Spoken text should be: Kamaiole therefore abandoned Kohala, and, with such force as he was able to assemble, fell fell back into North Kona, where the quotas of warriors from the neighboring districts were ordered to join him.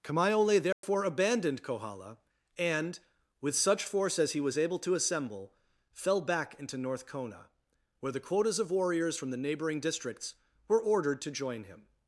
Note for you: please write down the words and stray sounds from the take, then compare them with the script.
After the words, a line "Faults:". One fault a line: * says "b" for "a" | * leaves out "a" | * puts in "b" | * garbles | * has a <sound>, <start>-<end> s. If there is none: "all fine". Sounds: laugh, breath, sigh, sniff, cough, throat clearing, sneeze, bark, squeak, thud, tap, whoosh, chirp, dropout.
Kamaiole therefore abandoned Kohala, and, with such force as he was able to assemble, fell back into North Kona, where the quotas of warriors from the neighboring districts were ordered to join him.
Faults:
* has a dropout, 0.7-0.8 s
* leaves out "fell"